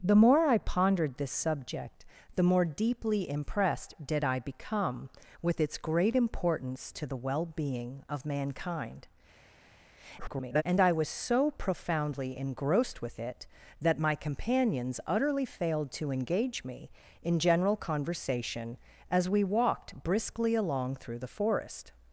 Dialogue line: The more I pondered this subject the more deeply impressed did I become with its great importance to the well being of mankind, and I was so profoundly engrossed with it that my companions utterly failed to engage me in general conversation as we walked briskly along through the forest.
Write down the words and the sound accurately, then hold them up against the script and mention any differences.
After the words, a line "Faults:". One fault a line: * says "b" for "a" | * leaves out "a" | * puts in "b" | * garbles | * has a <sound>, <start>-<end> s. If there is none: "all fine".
The more I pondered this subject the more deeply impressed did I become with its great importance to the well being of mankind, [garbled] and I was so profoundly engrossed with it that my companions utterly failed to engage me in general conversation as we walked briskly along through the forest.
Faults:
* garbles